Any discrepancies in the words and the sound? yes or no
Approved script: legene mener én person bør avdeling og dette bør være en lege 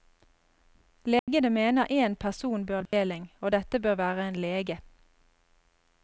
yes